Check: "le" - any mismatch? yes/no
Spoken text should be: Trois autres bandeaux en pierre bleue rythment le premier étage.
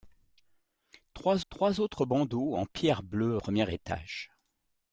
yes